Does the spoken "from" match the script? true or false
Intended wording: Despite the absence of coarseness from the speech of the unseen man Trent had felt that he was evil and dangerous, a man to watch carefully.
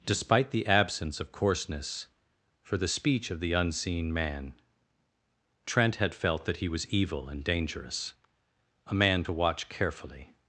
false